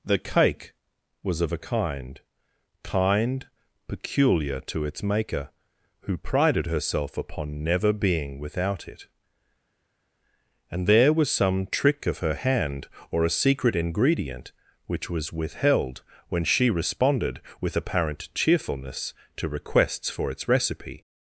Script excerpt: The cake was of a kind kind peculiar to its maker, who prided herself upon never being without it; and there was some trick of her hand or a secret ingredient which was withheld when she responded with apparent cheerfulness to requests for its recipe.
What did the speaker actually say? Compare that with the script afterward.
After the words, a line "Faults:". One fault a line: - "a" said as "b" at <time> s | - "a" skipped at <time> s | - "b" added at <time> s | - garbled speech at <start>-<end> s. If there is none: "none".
The cake was of a kind kind peculiar to its maker, who prided herself upon never being without it; and there was some trick of her hand or a secret ingredient which was withheld when she responded with apparent cheerfulness to requests for its recipe.
Faults:
none